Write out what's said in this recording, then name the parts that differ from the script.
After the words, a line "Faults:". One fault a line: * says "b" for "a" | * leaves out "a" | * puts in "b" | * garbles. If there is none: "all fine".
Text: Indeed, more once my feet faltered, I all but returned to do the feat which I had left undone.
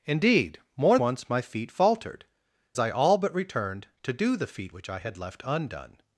Indeed, more once my feet faltered, I all but returned to do the feat which I had left undone.
Faults:
all fine